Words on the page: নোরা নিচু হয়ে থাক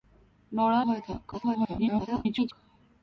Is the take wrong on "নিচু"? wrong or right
wrong